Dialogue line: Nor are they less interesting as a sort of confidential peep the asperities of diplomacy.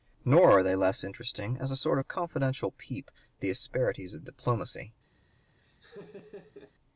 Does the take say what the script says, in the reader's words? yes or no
yes